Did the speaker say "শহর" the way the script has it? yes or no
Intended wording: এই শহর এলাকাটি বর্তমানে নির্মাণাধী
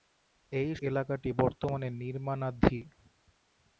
no